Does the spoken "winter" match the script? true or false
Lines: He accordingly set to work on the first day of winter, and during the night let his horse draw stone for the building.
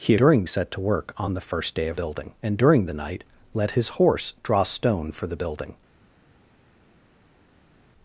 false